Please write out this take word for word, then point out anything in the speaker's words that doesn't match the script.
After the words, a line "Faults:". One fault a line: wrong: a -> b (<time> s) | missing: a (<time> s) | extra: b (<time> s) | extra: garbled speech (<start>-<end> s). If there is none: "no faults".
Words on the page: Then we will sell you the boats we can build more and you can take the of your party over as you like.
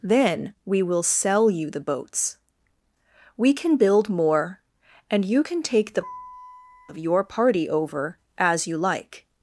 Then we will sell you the boats we can build more and you can take the of your party over as you like.
Faults:
no faults